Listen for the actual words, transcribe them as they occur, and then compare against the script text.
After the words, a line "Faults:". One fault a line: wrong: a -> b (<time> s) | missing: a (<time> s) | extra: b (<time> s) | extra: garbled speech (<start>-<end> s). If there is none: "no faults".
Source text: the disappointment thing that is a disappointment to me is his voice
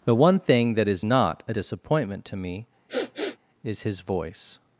the one thing that is not a disappointment to me is his voice
Faults:
wrong: disappointment -> one (0.1 s)
extra: not (1.0 s)